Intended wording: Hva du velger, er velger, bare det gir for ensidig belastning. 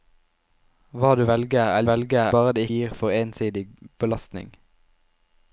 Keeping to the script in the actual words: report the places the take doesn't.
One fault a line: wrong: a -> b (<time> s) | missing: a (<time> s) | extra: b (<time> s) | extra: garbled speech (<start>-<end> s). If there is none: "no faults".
no faults